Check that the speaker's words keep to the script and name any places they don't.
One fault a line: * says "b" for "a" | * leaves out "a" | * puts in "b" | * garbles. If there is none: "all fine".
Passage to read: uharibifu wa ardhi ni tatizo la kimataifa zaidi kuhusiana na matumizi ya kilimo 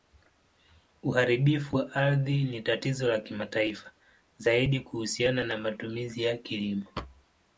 all fine